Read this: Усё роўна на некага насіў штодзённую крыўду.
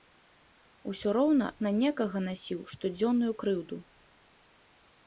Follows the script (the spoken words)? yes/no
yes